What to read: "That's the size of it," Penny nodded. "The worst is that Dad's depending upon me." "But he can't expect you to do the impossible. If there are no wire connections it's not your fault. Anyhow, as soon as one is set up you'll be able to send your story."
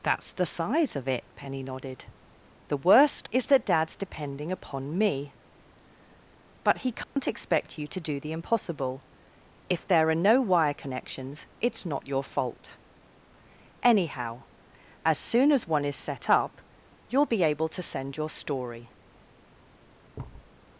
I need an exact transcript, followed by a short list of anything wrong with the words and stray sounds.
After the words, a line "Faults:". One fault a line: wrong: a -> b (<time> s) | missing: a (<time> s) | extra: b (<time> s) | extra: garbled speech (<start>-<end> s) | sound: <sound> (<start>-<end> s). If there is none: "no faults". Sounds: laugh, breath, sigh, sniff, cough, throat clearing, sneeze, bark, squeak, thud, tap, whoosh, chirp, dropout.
"That's the size of it," Penny nodded. "The worst is that Dad's depending upon me." "But he can't expect you to do the impossible. If there are no wire connections it's not your fault. Anyhow, as soon as one is set up you'll be able to send your story."
Faults:
sound: dropout (7.0-7.2 s)
sound: thud (20.1-20.5 s)